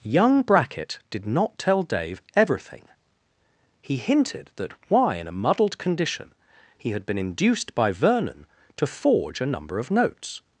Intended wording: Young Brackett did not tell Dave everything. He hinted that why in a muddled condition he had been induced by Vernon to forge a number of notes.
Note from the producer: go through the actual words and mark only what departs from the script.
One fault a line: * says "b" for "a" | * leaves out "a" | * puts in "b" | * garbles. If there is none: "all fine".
all fine